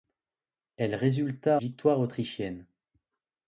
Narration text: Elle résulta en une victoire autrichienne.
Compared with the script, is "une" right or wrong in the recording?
wrong